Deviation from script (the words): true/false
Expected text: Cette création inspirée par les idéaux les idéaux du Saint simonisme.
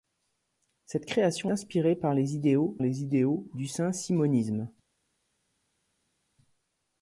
false